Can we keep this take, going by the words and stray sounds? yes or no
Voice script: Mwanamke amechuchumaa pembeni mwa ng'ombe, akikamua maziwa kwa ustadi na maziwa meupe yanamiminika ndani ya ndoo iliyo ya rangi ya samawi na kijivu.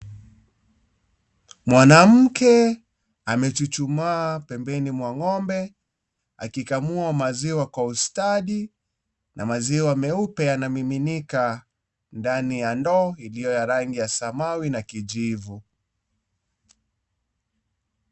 yes